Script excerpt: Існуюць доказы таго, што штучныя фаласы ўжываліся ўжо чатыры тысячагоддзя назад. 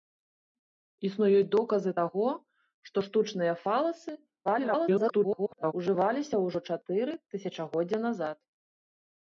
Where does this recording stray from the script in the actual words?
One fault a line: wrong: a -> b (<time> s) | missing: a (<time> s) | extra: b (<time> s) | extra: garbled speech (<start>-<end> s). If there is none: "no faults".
extra: garbled speech (4.4-5.7 s)